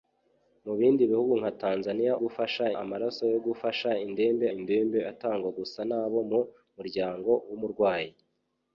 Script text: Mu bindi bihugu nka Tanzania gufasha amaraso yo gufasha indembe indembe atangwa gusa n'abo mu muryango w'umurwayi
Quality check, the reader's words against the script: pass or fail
pass